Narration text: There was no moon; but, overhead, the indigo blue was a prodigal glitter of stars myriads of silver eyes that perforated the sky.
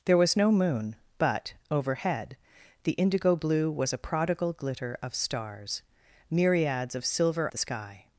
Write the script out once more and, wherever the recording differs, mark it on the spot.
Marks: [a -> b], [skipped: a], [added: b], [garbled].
There was no moon; but, overhead, the indigo blue was a prodigal glitter of stars myriads of silver [skipped: eyes that perforated] the sky.